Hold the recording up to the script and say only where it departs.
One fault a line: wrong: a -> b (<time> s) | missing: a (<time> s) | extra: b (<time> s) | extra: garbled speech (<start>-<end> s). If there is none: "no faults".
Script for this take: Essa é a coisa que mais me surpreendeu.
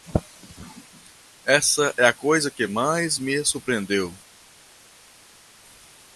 no faults